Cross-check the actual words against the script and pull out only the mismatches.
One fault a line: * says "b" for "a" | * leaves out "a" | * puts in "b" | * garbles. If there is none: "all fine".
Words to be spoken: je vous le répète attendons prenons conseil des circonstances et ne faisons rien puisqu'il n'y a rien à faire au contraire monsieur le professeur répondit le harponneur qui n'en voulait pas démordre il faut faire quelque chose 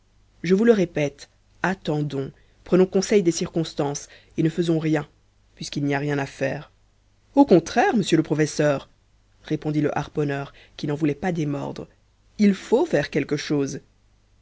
all fine